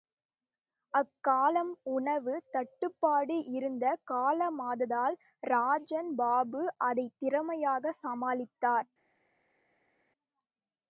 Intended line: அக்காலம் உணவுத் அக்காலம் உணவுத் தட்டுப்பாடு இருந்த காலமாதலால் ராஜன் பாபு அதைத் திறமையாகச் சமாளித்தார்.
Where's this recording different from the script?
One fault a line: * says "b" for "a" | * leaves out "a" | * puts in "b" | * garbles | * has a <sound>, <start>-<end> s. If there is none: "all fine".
* leaves out "அக்காலம் உணவுத்"